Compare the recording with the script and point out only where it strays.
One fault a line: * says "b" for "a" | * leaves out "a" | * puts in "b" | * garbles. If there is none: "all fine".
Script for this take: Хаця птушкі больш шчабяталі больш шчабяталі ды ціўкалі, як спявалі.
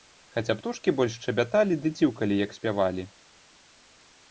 * leaves out "больш шчабяталі"